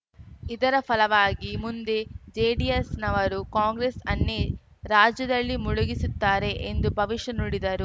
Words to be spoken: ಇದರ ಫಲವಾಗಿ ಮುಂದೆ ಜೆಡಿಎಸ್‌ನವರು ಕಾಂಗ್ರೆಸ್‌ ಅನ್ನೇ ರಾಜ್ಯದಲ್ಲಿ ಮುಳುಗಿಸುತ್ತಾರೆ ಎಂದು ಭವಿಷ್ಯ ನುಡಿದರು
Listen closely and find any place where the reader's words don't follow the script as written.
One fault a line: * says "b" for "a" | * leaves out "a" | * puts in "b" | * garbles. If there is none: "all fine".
all fine